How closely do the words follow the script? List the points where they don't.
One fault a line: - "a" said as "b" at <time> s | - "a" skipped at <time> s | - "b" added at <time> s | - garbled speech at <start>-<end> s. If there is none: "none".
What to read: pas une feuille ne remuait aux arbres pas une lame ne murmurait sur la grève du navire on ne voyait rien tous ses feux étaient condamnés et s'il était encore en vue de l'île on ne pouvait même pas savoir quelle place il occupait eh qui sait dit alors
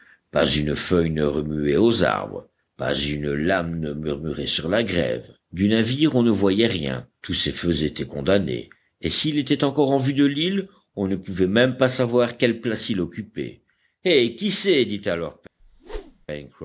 none